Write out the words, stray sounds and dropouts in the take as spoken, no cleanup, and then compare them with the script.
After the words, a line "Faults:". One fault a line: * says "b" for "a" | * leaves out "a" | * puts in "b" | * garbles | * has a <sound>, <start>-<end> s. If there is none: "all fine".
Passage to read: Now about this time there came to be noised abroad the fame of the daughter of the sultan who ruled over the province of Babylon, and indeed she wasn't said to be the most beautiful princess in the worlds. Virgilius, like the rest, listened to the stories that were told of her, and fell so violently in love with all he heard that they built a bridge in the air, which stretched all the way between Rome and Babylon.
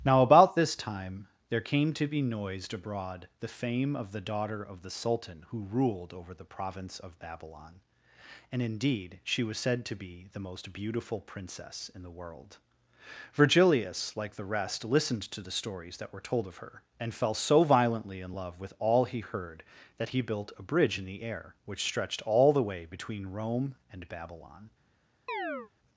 Now about this time there came to be noised abroad the fame of the daughter of the sultan who ruled over the province of Babylon, and indeed she was said to be the most beautiful princess in the world. Virgilius, like the rest, listened to the stories that were told of her, and fell so violently in love with all he heard that he built a bridge in the air, which stretched all the way between Rome and Babylon.
Faults:
* says "was" for "wasn't"
* says "world" for "worlds"
* says "he" for "they"
* has a chirp, 25.3-25.7 s